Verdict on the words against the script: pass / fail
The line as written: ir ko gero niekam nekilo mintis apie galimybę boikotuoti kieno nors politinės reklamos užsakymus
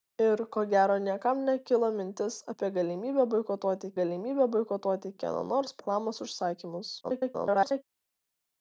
fail